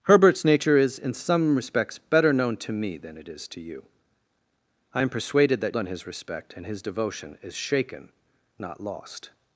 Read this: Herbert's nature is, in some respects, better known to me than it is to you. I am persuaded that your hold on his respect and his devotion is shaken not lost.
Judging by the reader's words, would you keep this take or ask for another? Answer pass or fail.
fail